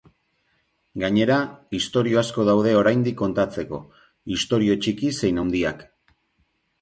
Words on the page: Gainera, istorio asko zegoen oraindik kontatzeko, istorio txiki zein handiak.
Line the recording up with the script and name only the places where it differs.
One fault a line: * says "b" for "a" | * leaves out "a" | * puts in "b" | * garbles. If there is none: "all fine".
* says "daude" for "zegoen"